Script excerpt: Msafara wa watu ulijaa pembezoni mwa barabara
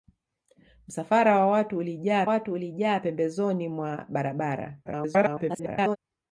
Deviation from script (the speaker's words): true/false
true